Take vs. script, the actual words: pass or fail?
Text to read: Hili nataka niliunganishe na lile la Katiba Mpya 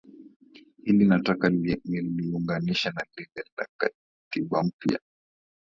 pass